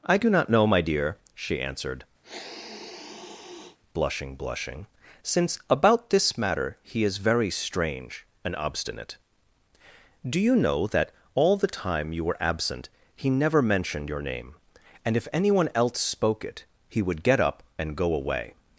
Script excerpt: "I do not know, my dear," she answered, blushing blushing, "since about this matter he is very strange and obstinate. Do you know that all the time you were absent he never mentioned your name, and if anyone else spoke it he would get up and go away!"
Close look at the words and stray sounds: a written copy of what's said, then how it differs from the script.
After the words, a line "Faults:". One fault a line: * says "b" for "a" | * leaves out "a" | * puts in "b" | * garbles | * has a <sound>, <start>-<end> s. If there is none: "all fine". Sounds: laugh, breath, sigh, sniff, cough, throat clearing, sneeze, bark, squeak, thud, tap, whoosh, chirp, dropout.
"I do not know, my dear," she answered, blushing blushing, "since about this matter he is very strange and obstinate. Do you know that all the time you were absent he never mentioned your name, and if anyone else spoke it he would get up and go away!"
Faults:
* has a sniff, 2.2-3.8 s